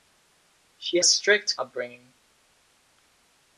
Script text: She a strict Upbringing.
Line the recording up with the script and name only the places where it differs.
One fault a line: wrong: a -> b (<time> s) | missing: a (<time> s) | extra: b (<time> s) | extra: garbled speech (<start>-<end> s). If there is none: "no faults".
no faults